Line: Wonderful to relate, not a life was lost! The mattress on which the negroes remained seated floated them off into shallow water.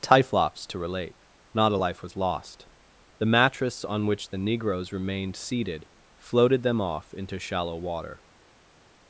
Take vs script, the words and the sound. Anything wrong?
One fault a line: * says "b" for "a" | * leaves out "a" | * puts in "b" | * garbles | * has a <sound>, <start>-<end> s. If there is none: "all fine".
* says "Typhlops" for "Wonderful"